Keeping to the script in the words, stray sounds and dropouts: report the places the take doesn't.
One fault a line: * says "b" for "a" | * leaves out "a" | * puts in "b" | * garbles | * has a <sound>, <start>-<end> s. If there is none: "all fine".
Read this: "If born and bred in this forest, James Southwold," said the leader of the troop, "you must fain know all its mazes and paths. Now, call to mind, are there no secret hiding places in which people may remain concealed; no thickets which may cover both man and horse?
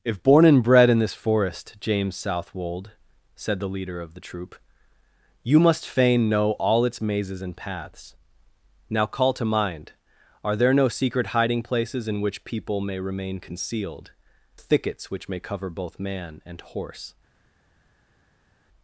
* leaves out "no"